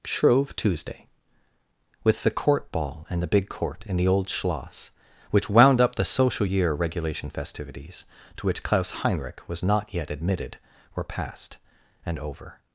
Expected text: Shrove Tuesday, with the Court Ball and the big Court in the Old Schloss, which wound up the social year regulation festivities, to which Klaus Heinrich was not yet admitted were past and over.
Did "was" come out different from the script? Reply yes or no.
no